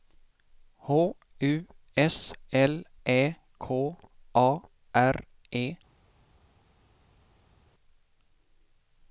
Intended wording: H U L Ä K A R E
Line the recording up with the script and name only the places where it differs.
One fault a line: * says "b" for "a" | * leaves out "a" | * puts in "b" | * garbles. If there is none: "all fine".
* puts in "S"